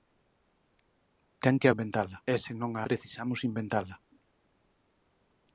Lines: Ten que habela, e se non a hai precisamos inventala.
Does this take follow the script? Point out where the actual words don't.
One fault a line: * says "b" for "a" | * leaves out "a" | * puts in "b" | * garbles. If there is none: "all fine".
* says "inventala" for "habela"
* leaves out "hai"